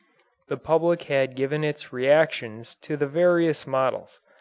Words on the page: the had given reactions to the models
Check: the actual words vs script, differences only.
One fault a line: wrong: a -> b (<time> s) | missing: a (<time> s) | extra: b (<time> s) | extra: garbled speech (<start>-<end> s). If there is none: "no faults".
extra: public (0.6 s)
extra: its (1.6 s)
extra: various (3.1 s)